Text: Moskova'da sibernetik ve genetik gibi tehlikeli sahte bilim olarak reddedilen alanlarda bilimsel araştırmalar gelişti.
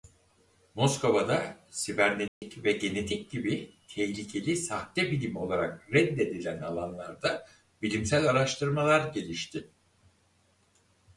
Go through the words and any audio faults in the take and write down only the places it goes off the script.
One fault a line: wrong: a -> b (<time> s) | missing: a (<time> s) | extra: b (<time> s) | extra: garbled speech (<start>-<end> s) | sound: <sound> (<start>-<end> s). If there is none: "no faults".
sound: dropout (2.3-2.4 s)